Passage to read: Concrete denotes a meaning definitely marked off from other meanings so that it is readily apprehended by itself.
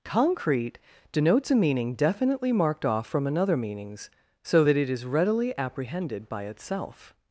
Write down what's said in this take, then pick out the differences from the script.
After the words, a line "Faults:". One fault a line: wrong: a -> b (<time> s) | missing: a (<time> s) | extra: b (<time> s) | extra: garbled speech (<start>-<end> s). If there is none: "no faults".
Concrete denotes a meaning definitely marked off from another meanings so that it is readily apprehended by itself.
Faults:
wrong: other -> another (3.3 s)